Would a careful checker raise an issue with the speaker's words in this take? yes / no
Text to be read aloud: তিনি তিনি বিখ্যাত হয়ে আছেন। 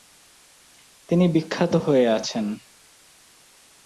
yes